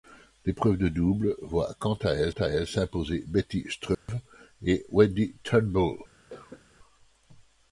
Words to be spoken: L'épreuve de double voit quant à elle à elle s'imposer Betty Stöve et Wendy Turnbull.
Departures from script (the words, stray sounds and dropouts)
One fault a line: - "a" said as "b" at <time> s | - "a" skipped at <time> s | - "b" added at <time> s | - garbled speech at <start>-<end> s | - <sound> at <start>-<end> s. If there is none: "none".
- dropout at 3.9-4.1 s
- cough at 6.3-6.6 s